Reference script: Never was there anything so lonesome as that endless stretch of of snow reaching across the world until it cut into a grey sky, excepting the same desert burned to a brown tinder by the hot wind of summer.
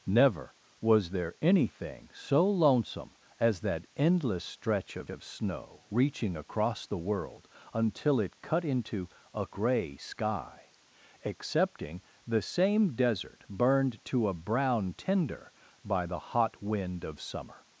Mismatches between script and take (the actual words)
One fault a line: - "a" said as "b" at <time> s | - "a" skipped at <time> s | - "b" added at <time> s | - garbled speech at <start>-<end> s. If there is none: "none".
none